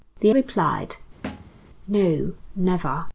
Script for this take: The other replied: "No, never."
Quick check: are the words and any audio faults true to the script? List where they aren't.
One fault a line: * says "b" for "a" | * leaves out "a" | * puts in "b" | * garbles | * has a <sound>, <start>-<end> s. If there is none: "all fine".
* leaves out "other"
* has a thud, 1.2-1.6 s